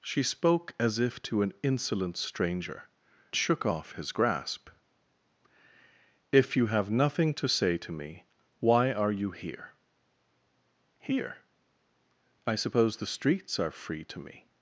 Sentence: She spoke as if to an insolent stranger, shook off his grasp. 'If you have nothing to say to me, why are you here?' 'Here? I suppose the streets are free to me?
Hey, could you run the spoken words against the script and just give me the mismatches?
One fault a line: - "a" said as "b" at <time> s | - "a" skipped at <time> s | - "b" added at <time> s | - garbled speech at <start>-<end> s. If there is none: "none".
none